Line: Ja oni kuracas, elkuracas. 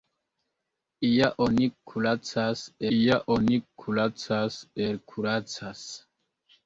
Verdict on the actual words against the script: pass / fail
fail